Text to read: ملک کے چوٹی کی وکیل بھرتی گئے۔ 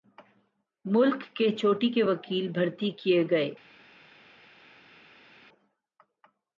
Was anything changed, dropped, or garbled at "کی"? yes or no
yes